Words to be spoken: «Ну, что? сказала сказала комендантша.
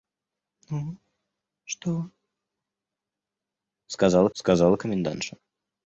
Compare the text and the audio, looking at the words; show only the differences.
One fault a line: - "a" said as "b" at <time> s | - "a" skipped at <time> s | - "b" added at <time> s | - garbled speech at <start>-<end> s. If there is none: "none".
none